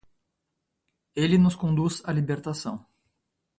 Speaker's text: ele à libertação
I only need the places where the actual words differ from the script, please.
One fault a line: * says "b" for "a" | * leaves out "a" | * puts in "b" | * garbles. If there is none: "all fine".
* puts in "nos conduz"